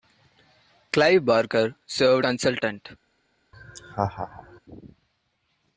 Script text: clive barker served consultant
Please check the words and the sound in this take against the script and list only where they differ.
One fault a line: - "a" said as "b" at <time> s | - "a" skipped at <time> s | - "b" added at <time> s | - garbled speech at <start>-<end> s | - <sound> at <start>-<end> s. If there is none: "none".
- laugh at 3.5-4.6 s